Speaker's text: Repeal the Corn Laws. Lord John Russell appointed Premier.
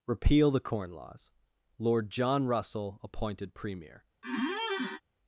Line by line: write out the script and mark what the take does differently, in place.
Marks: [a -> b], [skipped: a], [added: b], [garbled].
Repeal the Corn Laws. Lord John Russell appointed Premier.